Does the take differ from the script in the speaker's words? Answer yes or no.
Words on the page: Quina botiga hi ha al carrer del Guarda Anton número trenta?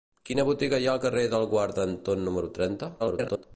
yes